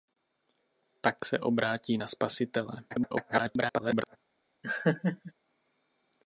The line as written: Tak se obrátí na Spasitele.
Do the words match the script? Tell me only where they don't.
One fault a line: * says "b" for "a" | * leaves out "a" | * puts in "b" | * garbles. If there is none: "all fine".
* garbles